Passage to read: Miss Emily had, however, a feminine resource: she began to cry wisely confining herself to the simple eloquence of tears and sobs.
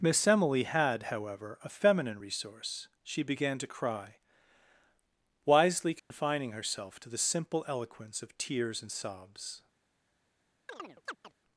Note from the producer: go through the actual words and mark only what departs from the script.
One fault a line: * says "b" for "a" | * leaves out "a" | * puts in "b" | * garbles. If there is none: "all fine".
all fine